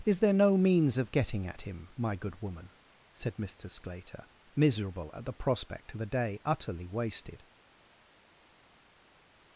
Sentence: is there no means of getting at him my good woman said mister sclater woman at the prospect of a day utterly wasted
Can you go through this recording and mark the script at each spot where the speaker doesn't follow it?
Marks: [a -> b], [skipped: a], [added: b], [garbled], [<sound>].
is there no means of getting at him my good woman said mister sclater [woman -> miserable] at the prospect of a day utterly wasted